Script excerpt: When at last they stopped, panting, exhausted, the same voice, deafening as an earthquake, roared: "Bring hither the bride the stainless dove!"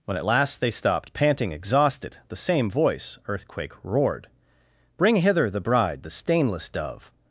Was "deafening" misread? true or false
true